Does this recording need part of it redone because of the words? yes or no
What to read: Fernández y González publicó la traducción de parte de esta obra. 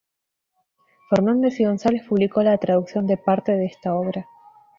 no